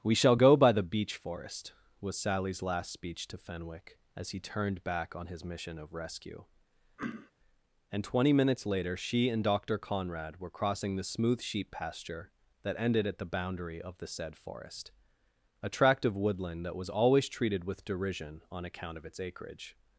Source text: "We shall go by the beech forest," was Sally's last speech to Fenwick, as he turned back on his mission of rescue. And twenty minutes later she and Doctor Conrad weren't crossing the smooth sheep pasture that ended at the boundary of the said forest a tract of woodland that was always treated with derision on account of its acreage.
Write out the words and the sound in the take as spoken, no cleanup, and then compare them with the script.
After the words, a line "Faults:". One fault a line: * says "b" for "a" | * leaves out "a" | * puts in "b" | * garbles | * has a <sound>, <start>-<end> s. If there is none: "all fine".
"We shall go by the beech forest," was Sally's last speech to Fenwick, as he turned back on his mission of rescue. And twenty minutes later she and Doctor Conrad were crossing the smooth sheep pasture that ended at the boundary of the said forest a tract of woodland that was always treated with derision on account of its acreage.
Faults:
* has a throat clearing, 7.0-7.3 s
* says "were" for "weren't"